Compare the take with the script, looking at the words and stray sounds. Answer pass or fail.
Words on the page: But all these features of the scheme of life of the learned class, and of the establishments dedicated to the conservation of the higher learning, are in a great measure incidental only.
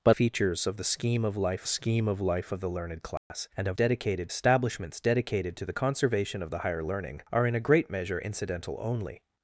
fail